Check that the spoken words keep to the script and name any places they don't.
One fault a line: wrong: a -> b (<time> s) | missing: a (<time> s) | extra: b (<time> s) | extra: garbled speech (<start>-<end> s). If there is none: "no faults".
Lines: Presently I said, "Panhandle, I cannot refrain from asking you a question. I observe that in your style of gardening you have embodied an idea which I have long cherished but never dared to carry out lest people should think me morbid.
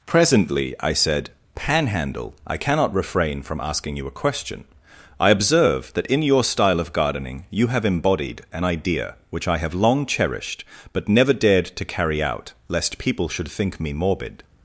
no faults